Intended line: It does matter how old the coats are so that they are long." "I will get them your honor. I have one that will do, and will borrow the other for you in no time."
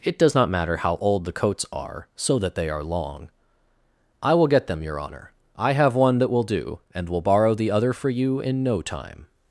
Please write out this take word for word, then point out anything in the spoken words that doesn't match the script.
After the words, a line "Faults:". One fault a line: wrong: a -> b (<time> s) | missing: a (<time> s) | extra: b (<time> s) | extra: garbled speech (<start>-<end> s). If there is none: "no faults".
It does not matter how old the coats are so that they are long." "I will get them your honor. I have one that will do, and will borrow the other for you in no time."
Faults:
extra: not (0.3 s)